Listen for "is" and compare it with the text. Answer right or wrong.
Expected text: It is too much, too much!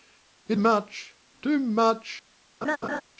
wrong